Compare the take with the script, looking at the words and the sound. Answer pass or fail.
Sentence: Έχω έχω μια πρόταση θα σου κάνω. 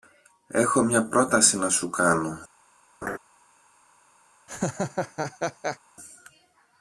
fail